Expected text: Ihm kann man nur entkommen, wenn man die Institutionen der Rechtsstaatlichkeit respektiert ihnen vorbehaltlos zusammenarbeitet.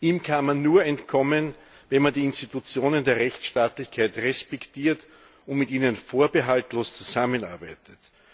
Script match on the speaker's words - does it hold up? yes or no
no